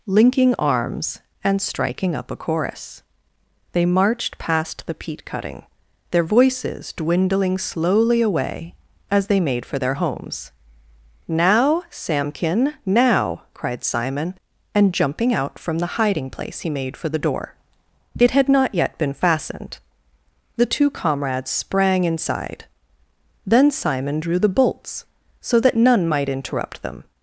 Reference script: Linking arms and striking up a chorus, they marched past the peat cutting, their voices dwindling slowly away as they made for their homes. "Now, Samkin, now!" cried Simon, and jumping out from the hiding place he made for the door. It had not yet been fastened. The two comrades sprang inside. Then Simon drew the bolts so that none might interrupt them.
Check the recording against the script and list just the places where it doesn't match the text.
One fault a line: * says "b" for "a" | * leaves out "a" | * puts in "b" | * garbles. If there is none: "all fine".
all fine